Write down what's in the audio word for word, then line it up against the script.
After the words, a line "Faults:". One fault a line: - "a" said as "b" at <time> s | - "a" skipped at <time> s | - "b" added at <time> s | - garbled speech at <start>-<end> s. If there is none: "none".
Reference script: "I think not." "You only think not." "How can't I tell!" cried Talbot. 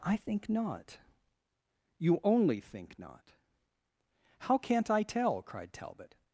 "I think not." "You only think not." "How can't I tell!" cried Talbot.
Faults:
none